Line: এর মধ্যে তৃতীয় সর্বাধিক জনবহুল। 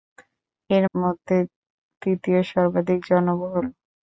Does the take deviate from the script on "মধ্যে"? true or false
false